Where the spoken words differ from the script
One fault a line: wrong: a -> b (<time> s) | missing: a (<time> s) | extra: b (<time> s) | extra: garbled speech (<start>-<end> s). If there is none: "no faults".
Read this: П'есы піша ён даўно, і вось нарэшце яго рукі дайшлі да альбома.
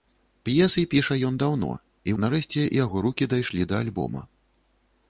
missing: вось (2.1 s)